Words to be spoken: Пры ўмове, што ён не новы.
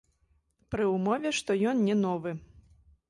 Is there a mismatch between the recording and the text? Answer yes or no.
no